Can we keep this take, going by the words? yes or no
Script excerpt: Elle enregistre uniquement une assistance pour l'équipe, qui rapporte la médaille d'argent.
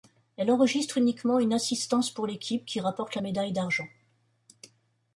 yes